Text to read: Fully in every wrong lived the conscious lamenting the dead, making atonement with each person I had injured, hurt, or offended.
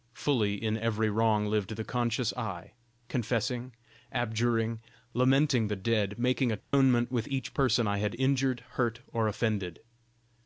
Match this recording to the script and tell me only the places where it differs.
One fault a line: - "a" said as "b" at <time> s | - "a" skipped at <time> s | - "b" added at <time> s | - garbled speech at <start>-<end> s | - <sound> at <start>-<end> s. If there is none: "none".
- "I confessing abjuring" added at 2.4 s
- dropout at 6.6-6.7 s